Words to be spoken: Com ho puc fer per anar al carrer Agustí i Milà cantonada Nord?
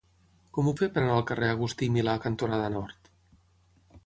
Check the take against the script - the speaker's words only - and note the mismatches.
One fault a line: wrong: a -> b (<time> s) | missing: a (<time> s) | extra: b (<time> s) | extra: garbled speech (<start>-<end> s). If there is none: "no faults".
missing: puc (0.7 s)